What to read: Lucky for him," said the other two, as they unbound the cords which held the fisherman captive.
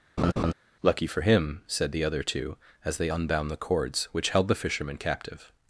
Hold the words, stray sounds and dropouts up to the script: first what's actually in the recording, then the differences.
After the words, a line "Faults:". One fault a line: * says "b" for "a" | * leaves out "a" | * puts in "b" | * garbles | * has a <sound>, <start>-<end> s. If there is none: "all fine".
Lucky for him," said the other two, as they unbound the cords which held the fisherman captive.
Faults:
* has a laugh, 0.2-0.5 s